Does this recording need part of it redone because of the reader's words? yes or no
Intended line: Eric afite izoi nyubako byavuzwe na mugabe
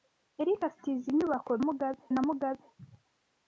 yes